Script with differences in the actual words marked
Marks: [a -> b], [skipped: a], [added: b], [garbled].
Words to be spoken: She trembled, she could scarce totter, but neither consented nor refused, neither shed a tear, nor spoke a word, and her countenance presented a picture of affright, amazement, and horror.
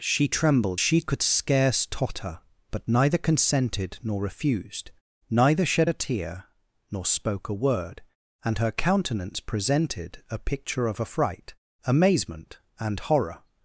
She trembled, she could scarce totter, but neither consented nor refused, neither shed a tear, nor spoke a word, and her countenance presented a picture of affright, amazement, and horror.